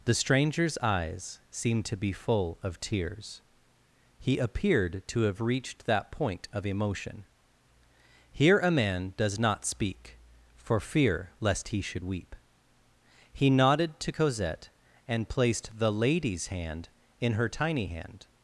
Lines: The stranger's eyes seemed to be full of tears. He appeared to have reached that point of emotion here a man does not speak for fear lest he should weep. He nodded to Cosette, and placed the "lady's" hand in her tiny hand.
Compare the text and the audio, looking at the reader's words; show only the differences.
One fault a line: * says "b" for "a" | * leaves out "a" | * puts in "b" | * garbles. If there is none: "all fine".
all fine